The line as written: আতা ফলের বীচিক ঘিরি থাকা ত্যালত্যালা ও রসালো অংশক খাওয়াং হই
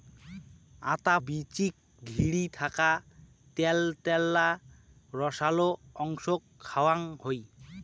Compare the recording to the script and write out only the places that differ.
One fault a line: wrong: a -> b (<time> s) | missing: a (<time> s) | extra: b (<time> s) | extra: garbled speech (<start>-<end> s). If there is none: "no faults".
missing: ফলের (1.1 s)
missing: ও (4.5 s)